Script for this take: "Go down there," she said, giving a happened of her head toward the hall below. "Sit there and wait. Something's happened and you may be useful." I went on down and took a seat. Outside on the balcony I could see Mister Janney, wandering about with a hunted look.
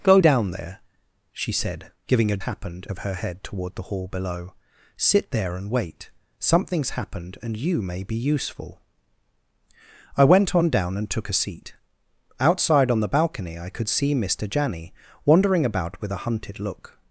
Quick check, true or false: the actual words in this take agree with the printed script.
true